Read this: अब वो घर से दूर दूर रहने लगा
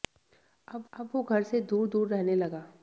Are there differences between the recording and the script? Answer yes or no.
yes